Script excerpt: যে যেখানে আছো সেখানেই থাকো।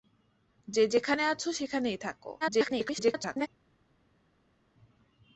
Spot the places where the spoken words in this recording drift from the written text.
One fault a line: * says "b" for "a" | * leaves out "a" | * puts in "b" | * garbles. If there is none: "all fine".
* garbles